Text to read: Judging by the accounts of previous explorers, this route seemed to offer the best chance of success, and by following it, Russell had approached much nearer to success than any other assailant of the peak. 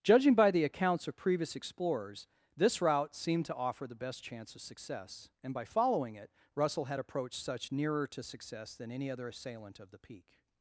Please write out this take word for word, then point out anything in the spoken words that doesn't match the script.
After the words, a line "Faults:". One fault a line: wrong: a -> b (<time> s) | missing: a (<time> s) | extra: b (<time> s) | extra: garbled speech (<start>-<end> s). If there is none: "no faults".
Judging by the accounts of previous explorers, this route seemed to offer the best chance of success, and by following it, Russell had approached such nearer to success than any other assailant of the peak.
Faults:
wrong: much -> such (7.4 s)